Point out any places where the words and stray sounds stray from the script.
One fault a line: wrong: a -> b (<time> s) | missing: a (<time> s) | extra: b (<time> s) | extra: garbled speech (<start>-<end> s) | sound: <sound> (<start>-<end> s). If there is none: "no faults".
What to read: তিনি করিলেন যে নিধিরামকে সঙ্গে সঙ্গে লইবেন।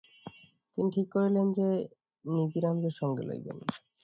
extra: ঠিক (0.9 s)
missing: সঙ্গে (3.2 s)